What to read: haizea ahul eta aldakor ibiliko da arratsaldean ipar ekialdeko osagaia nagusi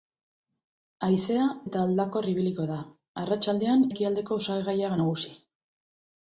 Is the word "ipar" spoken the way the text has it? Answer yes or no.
no